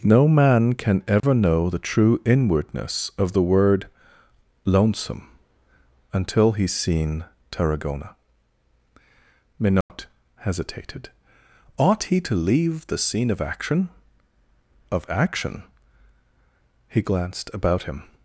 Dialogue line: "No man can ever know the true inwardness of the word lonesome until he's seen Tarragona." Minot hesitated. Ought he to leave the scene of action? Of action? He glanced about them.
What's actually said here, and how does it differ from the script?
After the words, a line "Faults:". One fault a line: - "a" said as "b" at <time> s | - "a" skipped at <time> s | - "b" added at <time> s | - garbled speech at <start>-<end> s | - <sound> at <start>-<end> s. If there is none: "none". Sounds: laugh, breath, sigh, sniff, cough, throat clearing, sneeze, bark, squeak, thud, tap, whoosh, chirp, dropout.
"No man can ever know the true inwardness of the word lonesome until he's seen Tarragona." Minot hesitated. Ought he to leave the scene of action? Of action? He glanced about him.
Faults:
- dropout at 1.2-1.2 s
- dropout at 9.8-9.9 s
- "them" said as "him" at 17.8 s